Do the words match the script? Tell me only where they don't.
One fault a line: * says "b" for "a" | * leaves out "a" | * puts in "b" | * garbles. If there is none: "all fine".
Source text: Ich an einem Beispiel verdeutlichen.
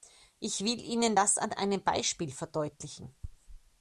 * puts in "will Ihnen das"